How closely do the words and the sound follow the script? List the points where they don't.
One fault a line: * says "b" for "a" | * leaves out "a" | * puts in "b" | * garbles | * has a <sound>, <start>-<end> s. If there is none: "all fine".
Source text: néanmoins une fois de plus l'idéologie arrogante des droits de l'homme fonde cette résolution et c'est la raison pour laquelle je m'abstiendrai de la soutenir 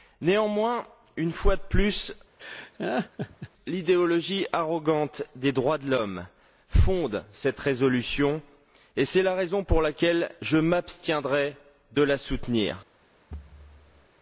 * has a laugh, 2.4-3.5 s
* has a thud, 13.3-14.1 s